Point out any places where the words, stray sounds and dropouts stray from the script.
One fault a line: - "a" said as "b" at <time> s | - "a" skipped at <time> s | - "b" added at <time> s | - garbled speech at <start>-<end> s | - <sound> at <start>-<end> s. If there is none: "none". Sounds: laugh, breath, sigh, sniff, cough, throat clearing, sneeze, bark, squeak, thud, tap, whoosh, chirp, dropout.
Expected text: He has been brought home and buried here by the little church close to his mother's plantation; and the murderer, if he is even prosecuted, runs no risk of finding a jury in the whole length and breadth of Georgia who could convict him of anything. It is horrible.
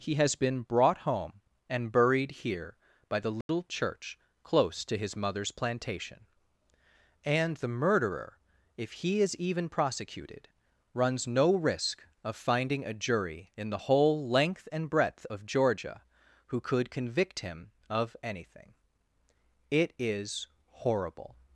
- dropout at 3.4-3.5 s